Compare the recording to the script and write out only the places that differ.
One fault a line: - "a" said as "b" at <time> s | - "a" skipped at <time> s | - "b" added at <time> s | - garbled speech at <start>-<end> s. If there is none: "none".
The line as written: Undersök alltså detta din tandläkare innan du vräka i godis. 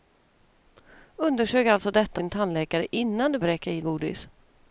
none